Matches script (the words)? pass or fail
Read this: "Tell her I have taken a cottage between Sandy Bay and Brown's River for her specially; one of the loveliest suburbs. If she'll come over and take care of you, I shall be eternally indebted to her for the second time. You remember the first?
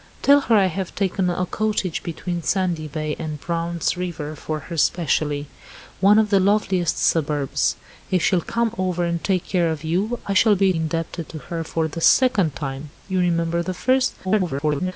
fail